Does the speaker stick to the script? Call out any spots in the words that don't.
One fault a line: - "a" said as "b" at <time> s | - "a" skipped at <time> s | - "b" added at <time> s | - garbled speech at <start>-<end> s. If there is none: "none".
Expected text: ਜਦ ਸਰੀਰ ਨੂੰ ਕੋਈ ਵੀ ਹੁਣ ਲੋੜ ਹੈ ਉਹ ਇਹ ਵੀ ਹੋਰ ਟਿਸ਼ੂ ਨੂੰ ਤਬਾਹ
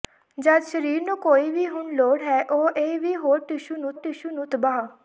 - "ਟਿਸ਼ੂ ਨੂੰ" added at 3.9 s